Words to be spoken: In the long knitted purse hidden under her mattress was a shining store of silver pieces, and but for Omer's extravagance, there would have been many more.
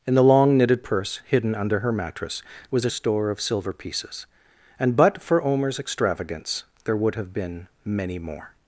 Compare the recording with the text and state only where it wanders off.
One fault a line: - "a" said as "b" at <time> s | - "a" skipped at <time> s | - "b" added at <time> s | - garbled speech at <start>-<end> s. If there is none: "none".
- "shining" skipped at 2.9 s